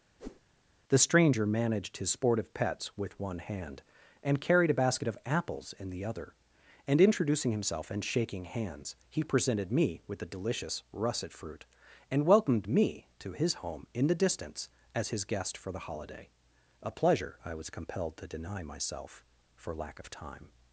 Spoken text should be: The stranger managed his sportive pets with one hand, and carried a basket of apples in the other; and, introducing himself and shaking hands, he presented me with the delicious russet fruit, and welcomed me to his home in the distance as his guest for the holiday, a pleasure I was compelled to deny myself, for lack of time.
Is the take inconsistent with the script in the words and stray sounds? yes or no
yes